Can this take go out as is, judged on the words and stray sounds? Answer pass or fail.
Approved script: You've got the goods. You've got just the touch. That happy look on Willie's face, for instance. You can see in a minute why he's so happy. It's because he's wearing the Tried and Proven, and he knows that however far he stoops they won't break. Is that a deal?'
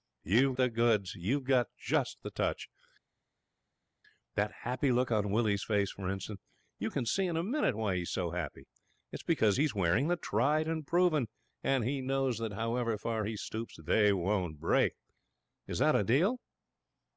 fail